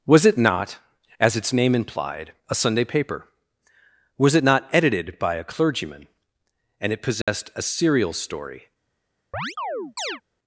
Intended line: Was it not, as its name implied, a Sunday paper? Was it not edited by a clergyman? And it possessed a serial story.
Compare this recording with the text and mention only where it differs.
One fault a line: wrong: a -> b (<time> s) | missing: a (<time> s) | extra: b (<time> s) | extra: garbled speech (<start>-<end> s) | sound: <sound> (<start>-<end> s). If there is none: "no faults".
sound: dropout (7.2-7.3 s)
sound: chirp (9.3-10.2 s)